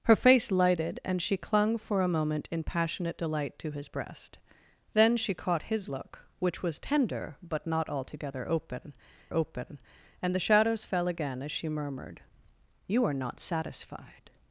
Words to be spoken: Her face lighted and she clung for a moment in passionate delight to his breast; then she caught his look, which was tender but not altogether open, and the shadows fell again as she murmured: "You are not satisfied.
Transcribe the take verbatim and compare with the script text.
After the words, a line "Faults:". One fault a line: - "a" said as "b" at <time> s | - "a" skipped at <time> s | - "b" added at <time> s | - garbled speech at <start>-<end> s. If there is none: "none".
Her face lighted and she clung for a moment in passionate delight to his breast; then she caught his look, which was tender but not altogether open open, and the shadows fell again as she murmured: "You are not satisfied.
Faults:
- "open" added at 9.3 s